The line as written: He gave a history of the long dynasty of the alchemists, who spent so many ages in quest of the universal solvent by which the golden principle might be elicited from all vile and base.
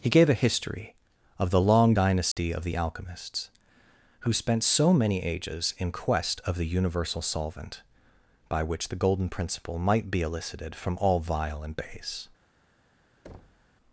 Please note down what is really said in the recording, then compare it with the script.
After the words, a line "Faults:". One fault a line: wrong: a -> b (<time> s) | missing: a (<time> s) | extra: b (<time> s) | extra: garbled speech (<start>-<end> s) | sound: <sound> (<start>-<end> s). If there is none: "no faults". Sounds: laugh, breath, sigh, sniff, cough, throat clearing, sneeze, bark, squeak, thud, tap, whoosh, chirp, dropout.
He gave a history of the long dynasty of the alchemists, who spent so many ages in quest of the universal solvent by which the golden principle might be elicited from all vile and base.
Faults:
sound: dropout (2.3-2.4 s)
sound: thud (13.2-13.7 s)